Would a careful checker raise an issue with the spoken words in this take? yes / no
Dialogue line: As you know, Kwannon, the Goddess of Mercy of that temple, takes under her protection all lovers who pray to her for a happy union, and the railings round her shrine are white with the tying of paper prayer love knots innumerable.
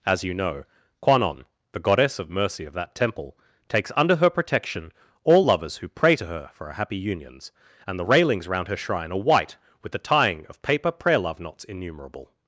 yes